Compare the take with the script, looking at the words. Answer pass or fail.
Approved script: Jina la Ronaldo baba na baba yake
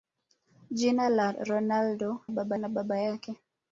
pass